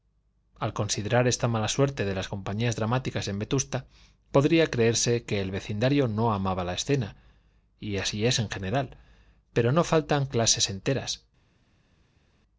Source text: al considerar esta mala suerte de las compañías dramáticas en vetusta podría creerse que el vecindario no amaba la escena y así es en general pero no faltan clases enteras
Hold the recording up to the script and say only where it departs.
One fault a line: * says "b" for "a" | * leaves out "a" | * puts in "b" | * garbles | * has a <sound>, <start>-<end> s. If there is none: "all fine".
all fine